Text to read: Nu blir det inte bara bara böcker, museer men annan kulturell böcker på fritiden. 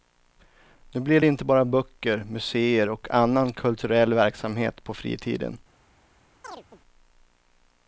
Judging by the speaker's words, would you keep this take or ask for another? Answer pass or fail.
fail